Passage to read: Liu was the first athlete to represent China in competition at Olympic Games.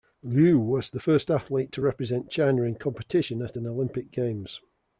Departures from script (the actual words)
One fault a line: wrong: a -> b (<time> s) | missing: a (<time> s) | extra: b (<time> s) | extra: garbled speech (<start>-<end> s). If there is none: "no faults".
extra: an (3.5 s)